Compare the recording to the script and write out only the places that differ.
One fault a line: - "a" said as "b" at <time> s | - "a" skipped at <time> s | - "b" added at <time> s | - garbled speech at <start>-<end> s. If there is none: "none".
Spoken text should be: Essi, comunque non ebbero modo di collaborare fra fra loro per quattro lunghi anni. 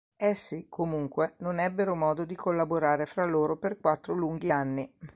- "fra" skipped at 3.2 s